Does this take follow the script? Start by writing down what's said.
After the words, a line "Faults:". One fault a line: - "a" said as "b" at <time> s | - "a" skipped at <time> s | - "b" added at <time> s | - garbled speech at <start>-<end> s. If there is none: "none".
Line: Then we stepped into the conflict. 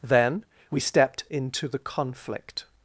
Then we stepped into the conflict.
Faults:
none